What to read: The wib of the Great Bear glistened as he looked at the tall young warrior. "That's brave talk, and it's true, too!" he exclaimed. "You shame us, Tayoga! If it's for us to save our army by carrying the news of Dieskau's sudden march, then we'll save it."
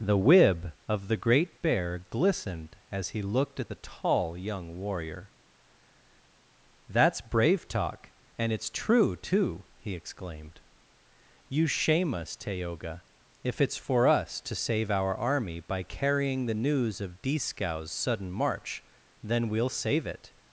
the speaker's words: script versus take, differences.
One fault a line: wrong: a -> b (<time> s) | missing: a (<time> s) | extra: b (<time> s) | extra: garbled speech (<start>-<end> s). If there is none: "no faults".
no faults